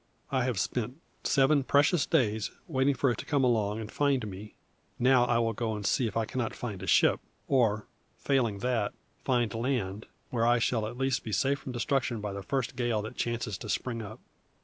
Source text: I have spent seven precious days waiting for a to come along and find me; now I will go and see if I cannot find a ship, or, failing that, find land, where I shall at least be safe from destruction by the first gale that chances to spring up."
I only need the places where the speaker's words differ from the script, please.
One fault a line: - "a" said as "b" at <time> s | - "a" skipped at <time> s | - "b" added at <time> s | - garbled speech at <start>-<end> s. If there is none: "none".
none